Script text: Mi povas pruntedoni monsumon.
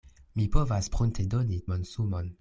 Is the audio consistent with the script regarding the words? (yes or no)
yes